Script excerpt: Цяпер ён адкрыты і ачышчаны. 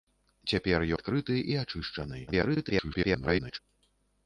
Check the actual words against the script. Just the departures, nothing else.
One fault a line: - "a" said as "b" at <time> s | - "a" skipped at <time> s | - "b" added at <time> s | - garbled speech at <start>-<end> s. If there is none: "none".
- "ён" skipped at 0.8 s
- garbled speech at 2.3-3.6 s